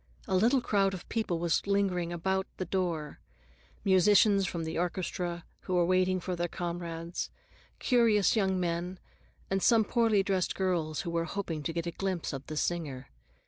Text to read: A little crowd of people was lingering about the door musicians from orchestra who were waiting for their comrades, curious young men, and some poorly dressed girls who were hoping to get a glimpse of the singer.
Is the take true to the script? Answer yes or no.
no